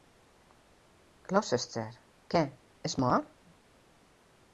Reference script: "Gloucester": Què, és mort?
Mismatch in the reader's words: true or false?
false